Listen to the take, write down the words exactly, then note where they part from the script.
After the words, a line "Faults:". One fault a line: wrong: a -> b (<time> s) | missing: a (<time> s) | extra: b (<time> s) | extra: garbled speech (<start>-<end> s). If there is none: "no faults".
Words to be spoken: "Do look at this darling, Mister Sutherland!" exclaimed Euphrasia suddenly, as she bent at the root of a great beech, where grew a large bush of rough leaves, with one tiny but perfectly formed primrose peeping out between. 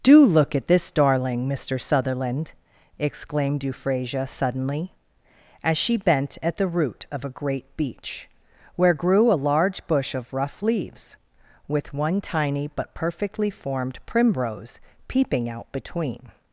"Do look at this darling, Mister Sutherland!" exclaimed Euphrasia suddenly, as she bent at the root of a great beech, where grew a large bush of rough leaves, with one tiny but perfectly formed primrose peeping out between.
Faults:
no faults